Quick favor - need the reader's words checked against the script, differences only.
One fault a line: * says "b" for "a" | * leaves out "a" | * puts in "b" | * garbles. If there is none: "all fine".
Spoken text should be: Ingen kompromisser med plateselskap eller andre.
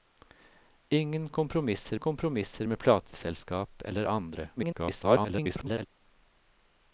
* puts in "kompromisser"
* garbles